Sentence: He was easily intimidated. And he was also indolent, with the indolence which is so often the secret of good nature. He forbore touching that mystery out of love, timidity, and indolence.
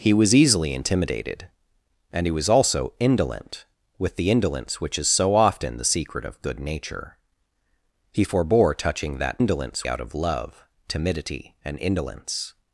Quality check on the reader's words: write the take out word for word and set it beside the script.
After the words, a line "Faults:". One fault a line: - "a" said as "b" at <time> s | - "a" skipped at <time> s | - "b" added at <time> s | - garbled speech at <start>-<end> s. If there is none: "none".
He was easily intimidated. And he was also indolent, with the indolence which is so often the secret of good nature. He forbore touching that indolence out of love, timidity, and indolence.
Faults:
- "mystery" said as "indolence" at 9.4 s